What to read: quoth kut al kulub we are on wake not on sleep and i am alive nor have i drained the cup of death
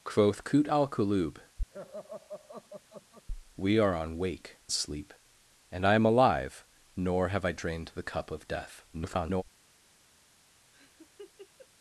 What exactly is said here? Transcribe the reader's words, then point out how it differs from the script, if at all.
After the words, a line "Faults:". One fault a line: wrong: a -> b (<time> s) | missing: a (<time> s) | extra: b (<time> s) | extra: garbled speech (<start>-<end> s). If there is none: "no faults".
quoth kut al kulub we are on wake sleep and i am alive nor have i drained the cup of death [garbled]
Faults:
missing: not on (4.6 s)
extra: garbled speech (8.9-9.4 s)